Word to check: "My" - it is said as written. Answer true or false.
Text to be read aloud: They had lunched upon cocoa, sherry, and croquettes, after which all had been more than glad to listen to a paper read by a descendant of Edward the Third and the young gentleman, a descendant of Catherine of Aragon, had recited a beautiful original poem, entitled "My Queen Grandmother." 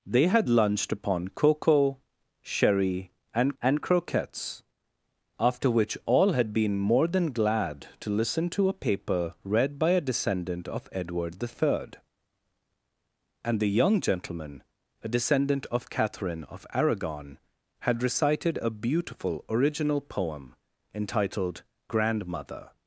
false